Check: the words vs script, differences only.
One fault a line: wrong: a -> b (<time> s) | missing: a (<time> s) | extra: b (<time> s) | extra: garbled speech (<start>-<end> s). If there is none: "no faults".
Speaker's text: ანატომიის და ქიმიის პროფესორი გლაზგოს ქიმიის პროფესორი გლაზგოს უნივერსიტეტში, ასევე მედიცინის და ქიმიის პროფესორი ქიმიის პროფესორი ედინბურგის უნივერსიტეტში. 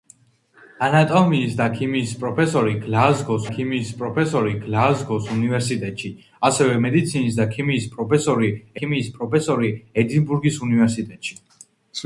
no faults